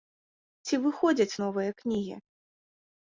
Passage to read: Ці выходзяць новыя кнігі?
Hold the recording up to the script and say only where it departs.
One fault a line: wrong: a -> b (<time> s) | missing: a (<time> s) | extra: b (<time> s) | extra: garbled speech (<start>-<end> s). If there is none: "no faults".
no faults